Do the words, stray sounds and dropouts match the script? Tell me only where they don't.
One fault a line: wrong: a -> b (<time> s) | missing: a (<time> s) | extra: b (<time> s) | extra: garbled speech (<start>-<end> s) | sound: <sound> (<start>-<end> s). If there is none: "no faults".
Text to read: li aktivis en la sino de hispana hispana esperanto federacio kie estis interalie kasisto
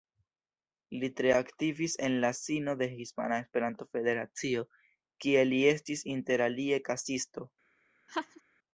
extra: tre (1.2 s)
missing: hispana (3.4 s)
extra: li (5.5 s)
sound: laugh (8.1-8.4 s)